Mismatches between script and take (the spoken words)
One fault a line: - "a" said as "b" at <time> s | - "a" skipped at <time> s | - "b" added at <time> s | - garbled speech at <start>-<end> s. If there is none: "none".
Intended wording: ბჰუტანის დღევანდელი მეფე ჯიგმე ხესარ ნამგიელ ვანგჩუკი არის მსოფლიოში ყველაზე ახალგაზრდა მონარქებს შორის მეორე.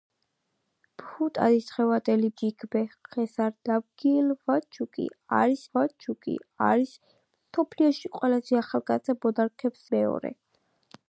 - "მეფე" skipped at 2.3 s
- "ვანგჩუკი არის" added at 5.8 s
- "შორის" skipped at 9.8 s